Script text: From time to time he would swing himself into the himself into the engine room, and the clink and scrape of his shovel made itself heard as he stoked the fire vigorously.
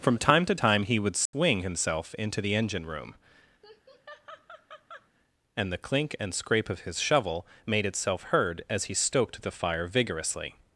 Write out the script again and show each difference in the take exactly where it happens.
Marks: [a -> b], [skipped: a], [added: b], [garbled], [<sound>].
From time to time he would swing [dropout] himself into the [skipped: himself into the] engine room, [laugh] and the clink and scrape of his shovel made itself heard as he stoked the fire vigorously.